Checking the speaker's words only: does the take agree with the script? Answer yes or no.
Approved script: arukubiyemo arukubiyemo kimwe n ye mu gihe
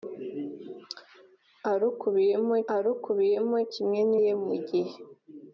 yes